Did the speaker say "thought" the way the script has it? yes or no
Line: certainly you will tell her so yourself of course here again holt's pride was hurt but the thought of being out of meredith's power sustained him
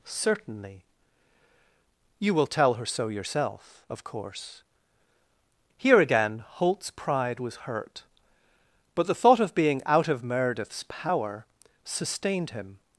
yes